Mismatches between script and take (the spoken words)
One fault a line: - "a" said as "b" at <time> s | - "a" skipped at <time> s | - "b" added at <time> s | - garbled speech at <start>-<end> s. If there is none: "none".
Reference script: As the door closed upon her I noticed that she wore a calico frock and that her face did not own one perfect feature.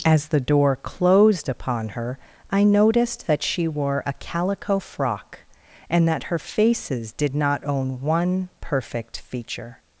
- "face" said as "faces" at 6.4 s